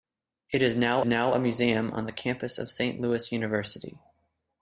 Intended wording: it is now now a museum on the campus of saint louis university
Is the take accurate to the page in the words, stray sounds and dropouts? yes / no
yes